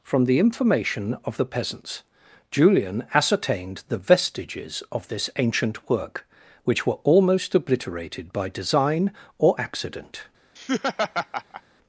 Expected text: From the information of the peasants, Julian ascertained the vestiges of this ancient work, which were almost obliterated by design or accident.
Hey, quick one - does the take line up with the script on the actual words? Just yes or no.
yes